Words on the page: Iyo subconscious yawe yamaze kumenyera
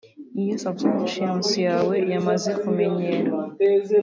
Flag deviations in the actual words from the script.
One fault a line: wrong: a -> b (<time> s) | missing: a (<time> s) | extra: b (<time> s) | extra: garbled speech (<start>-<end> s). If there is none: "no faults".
no faults